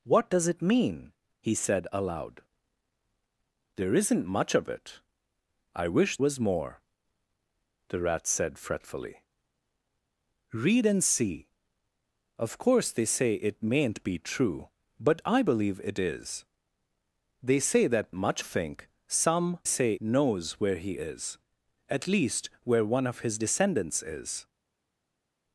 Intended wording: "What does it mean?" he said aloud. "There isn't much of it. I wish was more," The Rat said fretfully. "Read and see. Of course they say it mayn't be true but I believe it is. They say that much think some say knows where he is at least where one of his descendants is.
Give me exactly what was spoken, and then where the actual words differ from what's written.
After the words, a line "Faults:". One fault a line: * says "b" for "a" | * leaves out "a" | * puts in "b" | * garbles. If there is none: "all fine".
"What does it mean?" he said aloud. "There isn't much of it. I wish was more," The Rat said fretfully. "Read and see. Of course they say it mayn't be true but I believe it is. They say that much think some say knows where he is at least where one of his descendants is.
Faults:
all fine